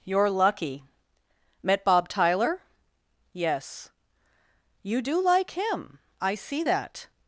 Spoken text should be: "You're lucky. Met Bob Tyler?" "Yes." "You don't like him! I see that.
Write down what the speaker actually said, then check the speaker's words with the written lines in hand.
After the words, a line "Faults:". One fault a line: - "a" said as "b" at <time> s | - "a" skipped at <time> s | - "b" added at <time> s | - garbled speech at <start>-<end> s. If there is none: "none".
"You're lucky. Met Bob Tyler?" "Yes." "You do like him! I see that.
Faults:
- "don't" said as "do" at 5.0 s